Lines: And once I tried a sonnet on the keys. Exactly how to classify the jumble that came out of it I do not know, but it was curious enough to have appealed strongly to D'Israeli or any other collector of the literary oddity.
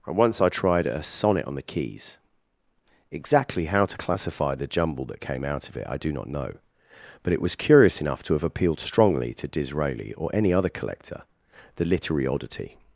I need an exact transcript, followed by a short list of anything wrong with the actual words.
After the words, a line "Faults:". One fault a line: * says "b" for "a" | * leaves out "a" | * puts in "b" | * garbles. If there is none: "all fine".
And once I tried a sonnet on the keys. Exactly how to classify the jumble that came out of it I do not know, but it was curious enough to have appealed strongly to D'Israeli or any other collector the literary oddity.
Faults:
* leaves out "of"